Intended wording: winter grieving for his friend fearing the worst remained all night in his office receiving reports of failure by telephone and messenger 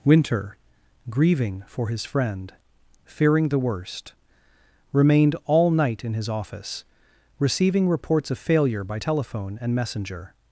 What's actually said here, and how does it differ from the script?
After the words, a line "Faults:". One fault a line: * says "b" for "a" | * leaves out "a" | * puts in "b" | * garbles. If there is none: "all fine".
winter grieving for his friend fearing the worst remained all night in his office receiving reports of failure by telephone and messenger
Faults:
all fine